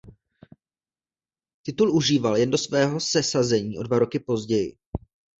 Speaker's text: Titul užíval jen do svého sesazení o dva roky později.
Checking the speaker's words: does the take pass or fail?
pass